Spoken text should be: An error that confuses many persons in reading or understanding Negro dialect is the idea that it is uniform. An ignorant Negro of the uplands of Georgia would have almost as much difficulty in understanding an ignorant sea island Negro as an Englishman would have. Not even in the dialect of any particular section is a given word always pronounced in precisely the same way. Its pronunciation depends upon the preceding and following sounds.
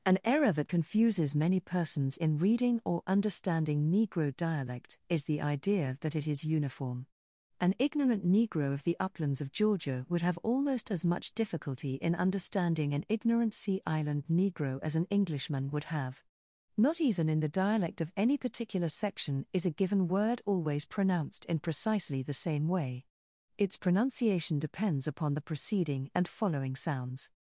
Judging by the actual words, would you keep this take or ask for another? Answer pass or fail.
pass